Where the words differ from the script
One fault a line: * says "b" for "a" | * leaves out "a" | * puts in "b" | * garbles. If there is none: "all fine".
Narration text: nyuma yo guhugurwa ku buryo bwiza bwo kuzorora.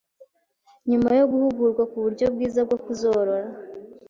all fine